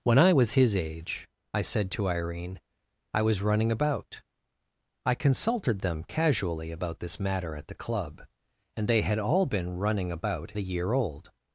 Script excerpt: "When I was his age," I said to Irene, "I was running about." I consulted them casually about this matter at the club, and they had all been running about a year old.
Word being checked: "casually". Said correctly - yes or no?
yes